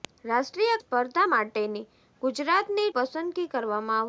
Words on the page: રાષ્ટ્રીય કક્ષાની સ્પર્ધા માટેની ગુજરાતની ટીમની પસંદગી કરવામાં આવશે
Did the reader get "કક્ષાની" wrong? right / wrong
wrong